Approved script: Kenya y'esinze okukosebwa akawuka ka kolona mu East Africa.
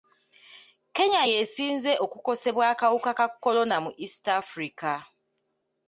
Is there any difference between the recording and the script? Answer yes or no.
no